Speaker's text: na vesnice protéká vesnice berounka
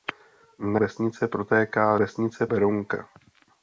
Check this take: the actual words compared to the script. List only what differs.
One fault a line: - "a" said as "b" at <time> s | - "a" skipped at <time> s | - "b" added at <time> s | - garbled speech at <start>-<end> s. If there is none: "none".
none